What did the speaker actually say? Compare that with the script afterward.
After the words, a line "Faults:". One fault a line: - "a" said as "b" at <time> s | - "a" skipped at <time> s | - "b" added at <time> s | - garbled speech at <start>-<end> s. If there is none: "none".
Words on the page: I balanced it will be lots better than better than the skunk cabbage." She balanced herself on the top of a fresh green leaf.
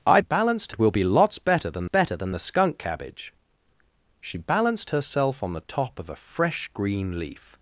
I balanced it will be lots better than better than the skunk cabbage." She balanced herself on the top of a fresh green leaf.
Faults:
none